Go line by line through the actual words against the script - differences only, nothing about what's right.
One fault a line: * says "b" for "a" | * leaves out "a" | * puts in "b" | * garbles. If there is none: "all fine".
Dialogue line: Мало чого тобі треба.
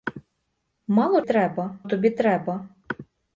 * says "треба" for "чого"